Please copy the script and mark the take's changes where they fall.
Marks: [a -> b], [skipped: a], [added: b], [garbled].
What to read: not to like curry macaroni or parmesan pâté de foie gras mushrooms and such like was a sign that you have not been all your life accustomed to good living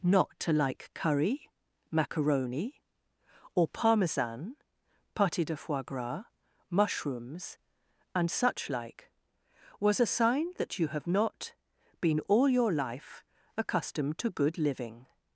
not to like curry macaroni or parmesan pâté de foie gras mushrooms and such like was a sign that you have not been all your life accustomed to good living